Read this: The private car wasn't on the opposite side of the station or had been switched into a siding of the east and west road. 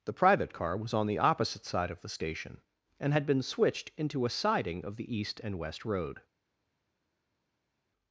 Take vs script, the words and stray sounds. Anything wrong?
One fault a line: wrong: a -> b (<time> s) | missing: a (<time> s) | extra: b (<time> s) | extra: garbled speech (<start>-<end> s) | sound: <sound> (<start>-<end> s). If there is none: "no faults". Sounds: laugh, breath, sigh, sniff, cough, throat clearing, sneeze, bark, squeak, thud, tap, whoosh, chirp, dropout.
wrong: wasn't -> was (0.8 s)
wrong: or -> and (3.0 s)